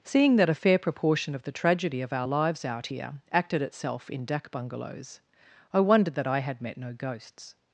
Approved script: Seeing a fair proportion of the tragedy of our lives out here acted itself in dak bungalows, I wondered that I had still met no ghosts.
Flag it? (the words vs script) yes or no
yes